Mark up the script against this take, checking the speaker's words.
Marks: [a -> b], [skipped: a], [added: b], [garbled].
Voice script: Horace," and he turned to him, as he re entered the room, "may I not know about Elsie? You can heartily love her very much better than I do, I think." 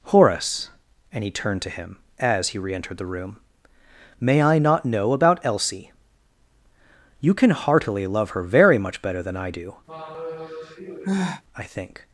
Horace," and he turned to him, as he re entered the room, "may I not know about Elsie? You can heartily love her very much better than I do, I think."